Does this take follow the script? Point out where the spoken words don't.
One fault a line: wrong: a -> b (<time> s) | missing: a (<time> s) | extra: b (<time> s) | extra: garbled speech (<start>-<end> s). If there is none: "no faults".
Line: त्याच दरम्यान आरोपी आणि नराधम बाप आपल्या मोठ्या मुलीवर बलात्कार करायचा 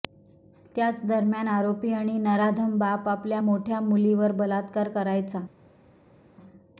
no faults